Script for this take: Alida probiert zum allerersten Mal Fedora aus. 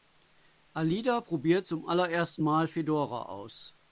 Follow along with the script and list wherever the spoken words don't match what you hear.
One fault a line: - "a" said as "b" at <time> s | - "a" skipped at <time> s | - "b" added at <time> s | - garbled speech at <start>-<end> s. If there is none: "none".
none